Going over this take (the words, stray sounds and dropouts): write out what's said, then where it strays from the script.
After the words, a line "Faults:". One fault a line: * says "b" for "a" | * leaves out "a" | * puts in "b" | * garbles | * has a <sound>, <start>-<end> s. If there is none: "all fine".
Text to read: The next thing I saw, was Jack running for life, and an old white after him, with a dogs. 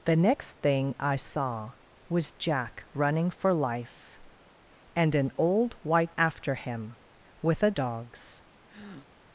The next thing I saw, was Jack running for life, and an old white after him, with a dogs.
Faults:
* has a breath, 8.7-9.1 s